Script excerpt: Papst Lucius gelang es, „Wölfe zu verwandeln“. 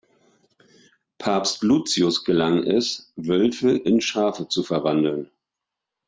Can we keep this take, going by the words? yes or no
no